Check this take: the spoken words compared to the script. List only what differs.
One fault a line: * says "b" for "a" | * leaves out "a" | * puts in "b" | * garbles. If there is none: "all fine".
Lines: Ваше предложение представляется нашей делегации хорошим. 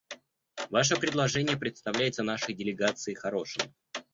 all fine